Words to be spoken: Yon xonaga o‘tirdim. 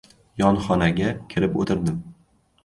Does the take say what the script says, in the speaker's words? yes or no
no